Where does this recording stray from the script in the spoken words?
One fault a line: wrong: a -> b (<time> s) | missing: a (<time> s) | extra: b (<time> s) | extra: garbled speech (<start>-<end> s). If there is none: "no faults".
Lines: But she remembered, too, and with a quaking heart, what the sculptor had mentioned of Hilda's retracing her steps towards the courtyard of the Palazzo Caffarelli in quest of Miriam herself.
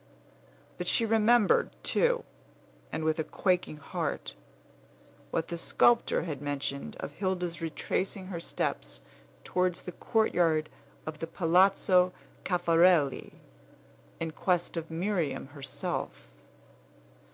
no faults